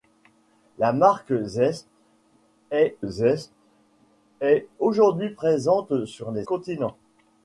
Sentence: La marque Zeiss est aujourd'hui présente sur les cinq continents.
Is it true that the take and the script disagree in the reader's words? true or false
true